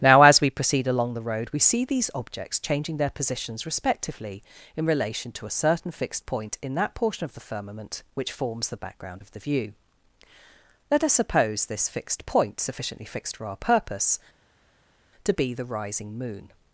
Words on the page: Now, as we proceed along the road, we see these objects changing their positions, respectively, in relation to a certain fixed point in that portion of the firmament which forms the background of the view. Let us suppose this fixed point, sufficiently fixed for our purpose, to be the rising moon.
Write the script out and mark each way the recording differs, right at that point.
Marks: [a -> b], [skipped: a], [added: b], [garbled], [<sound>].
Now, as we proceed along the road, we see these objects changing their positions, respectively, in relation to a certain fixed point in that portion of the firmament which forms the background of the view. Let us suppose this fixed point, sufficiently fixed for our purpose, to be the rising moon.